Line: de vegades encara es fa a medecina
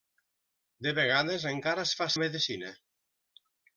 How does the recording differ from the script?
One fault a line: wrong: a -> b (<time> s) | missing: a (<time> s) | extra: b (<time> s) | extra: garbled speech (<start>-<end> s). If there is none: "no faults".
no faults